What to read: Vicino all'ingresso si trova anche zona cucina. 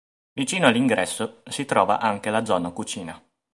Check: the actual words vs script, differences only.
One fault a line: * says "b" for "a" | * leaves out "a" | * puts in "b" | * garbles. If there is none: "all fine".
* puts in "la"